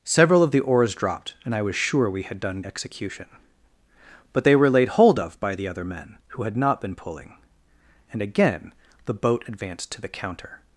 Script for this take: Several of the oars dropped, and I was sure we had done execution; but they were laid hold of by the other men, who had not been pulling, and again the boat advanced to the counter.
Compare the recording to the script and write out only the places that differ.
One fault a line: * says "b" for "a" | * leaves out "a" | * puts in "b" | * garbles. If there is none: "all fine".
all fine